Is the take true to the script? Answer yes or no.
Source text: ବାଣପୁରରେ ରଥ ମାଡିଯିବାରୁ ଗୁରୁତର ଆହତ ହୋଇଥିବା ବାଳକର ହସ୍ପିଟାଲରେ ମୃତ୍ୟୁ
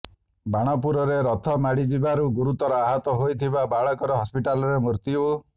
yes